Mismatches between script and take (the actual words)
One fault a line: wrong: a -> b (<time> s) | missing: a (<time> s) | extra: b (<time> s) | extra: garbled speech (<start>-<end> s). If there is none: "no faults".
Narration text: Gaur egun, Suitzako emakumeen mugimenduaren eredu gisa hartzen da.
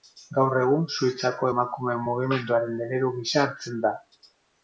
no faults